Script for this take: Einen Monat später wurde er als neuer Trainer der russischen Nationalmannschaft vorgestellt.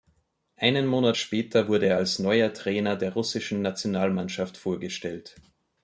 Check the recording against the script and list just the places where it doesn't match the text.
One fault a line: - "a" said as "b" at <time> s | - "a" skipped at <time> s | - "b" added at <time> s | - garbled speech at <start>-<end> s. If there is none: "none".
none